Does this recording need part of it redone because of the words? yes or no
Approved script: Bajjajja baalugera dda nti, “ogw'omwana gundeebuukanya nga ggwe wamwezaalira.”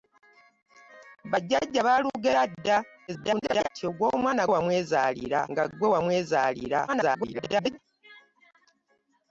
yes